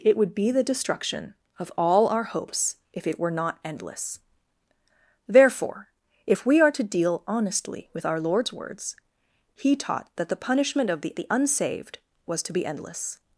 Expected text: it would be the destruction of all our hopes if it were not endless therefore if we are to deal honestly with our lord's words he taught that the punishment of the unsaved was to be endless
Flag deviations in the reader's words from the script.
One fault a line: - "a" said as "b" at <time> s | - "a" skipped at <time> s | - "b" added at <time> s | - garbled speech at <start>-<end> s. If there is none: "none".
- "the" added at 11.2 s